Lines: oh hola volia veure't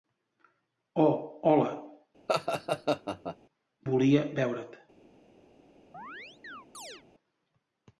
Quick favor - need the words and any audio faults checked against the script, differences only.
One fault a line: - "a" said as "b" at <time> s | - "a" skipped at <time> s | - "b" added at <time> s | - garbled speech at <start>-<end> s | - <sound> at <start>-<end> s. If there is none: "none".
- laugh at 2.3-3.4 s
- chirp at 5.9-7.0 s